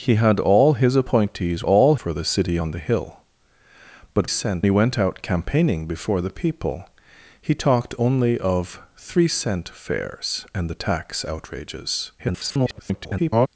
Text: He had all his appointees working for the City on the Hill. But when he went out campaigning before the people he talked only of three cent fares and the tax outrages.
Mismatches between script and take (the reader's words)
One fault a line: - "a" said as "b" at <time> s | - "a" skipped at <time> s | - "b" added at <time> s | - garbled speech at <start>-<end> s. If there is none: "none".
- "working" said as "all" at 1.6 s
- "when" said as "cent" at 4.2 s
- garbled speech at 12.2-13.5 s